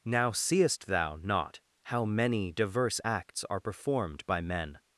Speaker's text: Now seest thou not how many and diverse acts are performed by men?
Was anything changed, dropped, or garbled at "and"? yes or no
yes